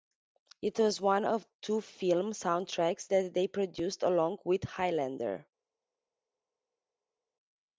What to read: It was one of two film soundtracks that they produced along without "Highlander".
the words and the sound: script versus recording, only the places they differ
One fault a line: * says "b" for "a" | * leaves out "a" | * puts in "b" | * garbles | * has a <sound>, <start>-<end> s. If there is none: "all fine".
* says "with" for "without"